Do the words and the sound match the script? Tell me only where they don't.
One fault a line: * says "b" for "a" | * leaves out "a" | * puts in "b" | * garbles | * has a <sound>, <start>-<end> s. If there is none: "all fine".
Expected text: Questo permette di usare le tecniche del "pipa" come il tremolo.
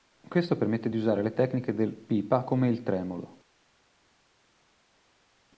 all fine